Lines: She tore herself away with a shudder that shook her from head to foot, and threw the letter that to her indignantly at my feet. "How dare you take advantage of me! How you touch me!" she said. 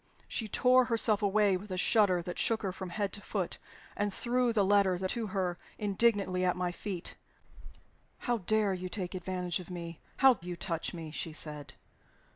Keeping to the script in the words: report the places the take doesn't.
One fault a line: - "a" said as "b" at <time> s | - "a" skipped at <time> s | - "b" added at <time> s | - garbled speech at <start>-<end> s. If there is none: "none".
none